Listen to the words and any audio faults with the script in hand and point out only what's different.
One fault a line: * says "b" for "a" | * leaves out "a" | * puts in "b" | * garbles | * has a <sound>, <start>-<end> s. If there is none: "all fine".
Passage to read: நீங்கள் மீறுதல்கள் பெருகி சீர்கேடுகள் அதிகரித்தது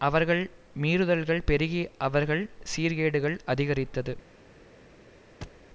* says "அவர்கள்" for "நீங்கள்"
* puts in "அவர்கள்"
* has a thud, 5.4-5.7 s